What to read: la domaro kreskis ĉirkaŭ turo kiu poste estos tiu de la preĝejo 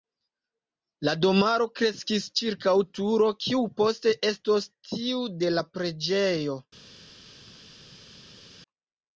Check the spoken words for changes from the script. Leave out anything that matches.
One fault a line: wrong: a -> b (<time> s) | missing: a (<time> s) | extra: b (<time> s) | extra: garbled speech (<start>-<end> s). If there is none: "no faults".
no faults